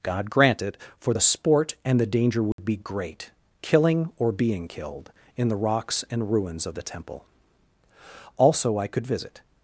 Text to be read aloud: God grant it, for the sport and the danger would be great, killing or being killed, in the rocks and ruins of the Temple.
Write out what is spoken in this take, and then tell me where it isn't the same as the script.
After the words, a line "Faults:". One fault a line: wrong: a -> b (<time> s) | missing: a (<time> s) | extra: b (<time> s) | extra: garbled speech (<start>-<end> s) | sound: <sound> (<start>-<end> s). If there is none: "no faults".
God grant it, for the sport and the danger would be great, killing or being killed, in the rocks and ruins of the Temple. Also I could visit
Faults:
sound: dropout (2.5-2.6 s)
extra: Also I could visit (8.4 s)